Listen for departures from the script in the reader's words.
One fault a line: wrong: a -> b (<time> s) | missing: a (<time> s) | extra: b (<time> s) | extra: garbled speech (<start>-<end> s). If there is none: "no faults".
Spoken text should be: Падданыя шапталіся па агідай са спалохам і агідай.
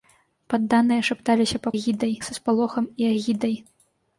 no faults